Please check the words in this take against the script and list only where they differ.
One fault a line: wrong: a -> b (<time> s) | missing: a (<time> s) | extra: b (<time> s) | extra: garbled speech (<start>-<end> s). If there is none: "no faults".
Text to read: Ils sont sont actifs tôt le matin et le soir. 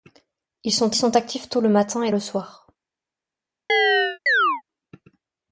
no faults